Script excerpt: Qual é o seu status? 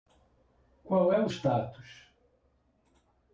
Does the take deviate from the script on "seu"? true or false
true